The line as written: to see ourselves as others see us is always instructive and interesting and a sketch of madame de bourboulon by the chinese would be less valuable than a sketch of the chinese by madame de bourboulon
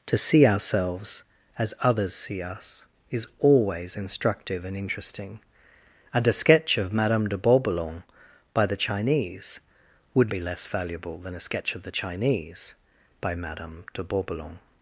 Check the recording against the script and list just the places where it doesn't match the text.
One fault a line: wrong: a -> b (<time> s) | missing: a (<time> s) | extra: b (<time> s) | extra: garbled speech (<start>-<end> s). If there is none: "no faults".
no faults